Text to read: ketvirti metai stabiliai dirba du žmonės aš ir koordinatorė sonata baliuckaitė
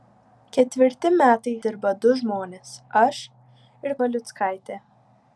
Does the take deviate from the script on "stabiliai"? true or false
true